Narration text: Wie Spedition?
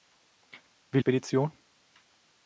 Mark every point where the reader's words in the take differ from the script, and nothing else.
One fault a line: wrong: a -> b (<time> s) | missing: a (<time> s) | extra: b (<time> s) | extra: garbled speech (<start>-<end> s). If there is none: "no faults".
no faults